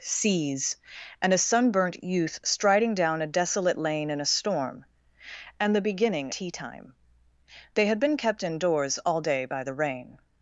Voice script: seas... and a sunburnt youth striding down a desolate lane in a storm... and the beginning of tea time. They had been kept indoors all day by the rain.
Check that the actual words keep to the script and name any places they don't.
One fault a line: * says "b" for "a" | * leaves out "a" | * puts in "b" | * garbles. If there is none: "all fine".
* leaves out "of"